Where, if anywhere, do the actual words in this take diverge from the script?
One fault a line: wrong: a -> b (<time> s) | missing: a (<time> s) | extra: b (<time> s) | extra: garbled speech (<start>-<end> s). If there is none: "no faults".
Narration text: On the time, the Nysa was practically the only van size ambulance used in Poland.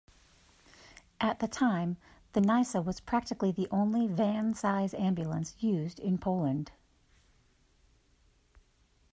wrong: On -> At (1.2 s)